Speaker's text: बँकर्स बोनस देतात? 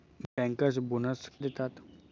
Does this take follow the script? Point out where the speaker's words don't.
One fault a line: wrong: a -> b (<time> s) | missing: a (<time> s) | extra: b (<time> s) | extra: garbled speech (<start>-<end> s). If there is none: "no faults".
no faults